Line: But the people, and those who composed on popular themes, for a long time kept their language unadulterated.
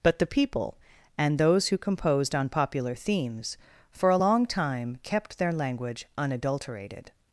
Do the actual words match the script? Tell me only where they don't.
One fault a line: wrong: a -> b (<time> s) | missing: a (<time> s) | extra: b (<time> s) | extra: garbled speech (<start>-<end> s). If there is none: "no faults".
no faults